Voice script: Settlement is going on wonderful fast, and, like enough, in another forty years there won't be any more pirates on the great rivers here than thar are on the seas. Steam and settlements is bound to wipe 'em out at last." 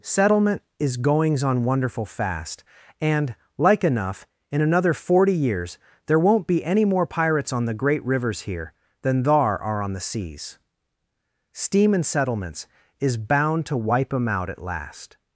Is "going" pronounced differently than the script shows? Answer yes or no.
yes